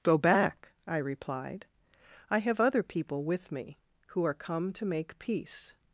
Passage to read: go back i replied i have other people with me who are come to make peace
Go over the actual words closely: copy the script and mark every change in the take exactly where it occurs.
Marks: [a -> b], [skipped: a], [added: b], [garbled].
go back i replied i have other people with me who are come to make peace